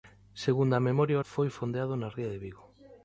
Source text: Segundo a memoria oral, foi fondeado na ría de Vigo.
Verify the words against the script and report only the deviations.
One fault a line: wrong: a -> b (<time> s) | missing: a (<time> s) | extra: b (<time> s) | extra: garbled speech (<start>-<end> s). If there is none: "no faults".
missing: oral (1.2 s)